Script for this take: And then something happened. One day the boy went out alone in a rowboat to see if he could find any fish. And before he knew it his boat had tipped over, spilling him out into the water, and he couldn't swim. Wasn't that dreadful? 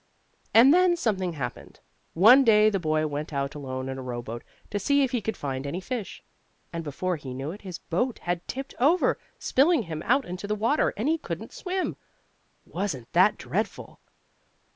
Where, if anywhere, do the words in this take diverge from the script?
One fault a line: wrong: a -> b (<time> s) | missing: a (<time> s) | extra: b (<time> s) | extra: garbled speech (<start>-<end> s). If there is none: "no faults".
no faults